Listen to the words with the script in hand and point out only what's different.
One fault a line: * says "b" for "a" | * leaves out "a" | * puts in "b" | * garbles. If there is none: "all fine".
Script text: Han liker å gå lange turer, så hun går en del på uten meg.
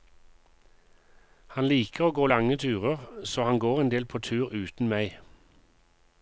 * says "han" for "hun"
* puts in "tur"